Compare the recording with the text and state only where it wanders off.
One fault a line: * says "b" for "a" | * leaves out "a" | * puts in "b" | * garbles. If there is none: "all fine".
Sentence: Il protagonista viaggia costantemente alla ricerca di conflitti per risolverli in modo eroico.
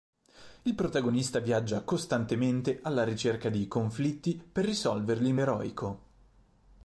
* leaves out "modo"